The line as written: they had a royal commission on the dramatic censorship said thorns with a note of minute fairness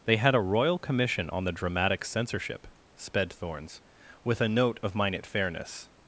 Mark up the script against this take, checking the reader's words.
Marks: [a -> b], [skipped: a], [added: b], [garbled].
they had a royal commission on the dramatic censorship [said -> sped] thorns with a note of minute fairness